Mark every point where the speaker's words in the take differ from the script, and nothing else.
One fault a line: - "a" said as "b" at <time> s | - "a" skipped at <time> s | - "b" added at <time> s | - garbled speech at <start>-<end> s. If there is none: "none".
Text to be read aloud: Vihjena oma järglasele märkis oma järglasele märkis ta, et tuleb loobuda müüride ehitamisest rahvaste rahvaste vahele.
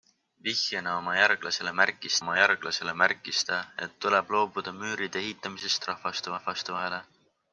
none